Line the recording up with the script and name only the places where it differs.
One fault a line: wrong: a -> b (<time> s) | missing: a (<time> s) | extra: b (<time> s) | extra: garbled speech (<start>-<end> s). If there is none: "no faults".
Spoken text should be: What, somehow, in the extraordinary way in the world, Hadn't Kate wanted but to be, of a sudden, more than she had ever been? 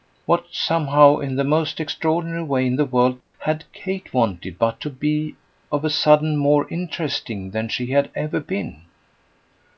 extra: most (1.4 s)
wrong: Hadn't -> HAD (3.4 s)
extra: interesting (6.7 s)